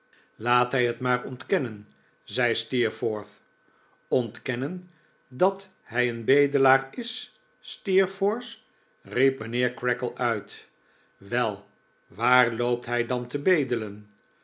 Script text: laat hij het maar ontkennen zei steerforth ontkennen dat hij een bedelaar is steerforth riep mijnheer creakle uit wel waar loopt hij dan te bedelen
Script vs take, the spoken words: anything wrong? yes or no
no